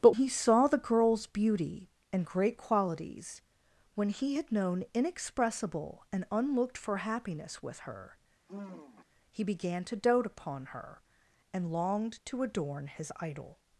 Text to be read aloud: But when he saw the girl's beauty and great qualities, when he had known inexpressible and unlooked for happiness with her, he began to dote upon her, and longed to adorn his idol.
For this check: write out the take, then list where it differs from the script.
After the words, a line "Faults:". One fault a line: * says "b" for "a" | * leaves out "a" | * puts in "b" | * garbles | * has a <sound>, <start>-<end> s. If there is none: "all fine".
But he saw the girl's beauty and great qualities, when he had known inexpressible and unlooked for happiness with her, he began to dote upon her, and longed to adorn his idol.
Faults:
* leaves out "when"
* has a sigh, 8.5-9.1 s